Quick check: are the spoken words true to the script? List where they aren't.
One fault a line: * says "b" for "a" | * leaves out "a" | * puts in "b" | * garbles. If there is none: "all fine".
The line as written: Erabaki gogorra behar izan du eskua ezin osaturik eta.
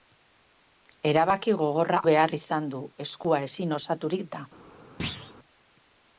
all fine